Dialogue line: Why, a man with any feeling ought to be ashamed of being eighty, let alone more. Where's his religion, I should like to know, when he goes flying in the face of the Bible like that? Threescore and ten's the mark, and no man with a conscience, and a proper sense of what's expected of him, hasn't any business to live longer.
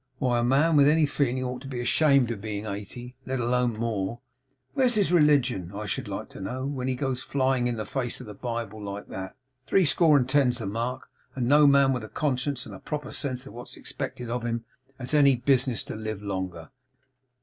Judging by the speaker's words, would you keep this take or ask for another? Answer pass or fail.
fail